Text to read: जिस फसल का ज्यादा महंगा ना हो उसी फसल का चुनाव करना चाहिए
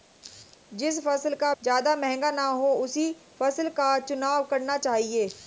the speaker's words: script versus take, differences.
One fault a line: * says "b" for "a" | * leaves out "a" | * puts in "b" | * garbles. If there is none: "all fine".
all fine